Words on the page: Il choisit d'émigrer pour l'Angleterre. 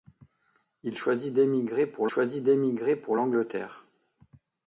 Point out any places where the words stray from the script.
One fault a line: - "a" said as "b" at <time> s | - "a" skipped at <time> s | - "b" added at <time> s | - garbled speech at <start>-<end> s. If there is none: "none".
- "choisit d'émigrer pour" added at 2.1 s